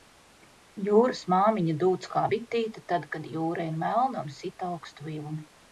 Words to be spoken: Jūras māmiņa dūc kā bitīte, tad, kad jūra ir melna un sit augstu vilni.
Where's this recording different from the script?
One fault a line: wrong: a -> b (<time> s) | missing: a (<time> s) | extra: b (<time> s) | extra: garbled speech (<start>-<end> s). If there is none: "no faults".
no faults